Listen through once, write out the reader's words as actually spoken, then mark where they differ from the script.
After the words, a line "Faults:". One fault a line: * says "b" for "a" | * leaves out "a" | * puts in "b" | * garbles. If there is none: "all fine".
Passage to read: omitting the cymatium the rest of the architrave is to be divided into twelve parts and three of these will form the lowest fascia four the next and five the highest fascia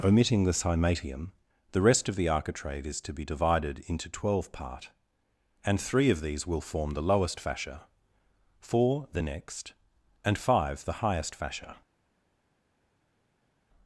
omitting the cymatium the rest of the architrave is to be divided into twelve part and three of these will form the lowest fascia four the next and five the highest fascia
Faults:
* says "part" for "parts"